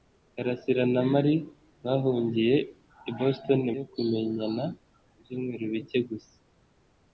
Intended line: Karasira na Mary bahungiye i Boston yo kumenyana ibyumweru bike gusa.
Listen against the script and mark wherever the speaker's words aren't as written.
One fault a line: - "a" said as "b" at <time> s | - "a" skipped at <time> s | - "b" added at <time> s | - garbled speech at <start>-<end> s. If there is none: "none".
none